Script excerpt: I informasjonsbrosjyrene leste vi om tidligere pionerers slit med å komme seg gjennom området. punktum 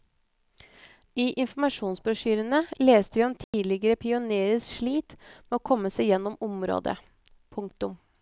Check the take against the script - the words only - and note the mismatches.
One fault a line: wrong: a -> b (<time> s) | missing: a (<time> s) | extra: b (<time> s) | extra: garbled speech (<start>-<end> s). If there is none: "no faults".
no faults